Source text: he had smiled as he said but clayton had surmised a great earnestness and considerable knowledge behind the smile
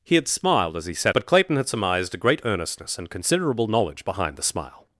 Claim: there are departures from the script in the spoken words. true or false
false